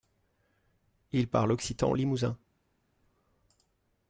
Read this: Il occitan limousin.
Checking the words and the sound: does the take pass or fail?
fail